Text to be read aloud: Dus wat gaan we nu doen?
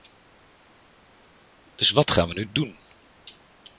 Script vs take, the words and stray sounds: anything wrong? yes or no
no